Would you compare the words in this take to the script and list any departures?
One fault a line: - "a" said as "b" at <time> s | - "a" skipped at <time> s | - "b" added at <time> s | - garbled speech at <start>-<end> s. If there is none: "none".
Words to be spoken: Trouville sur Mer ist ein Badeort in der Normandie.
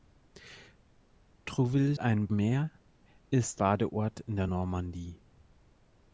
- "sur" said as "ein" at 2.0 s
- "ein" skipped at 3.6 s